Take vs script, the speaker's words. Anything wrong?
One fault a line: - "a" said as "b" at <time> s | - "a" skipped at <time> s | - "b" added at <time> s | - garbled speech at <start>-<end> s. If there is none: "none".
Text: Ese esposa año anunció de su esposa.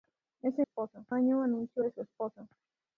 none